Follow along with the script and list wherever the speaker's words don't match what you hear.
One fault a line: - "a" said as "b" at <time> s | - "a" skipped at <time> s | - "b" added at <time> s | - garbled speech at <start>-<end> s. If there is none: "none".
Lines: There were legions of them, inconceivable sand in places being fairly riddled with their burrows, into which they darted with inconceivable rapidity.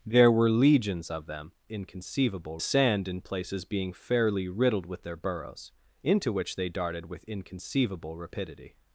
none